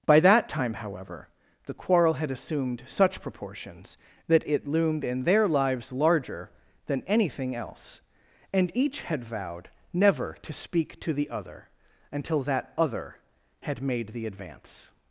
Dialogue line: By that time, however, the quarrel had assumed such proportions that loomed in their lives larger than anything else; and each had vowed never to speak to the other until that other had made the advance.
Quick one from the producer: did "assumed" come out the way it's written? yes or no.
yes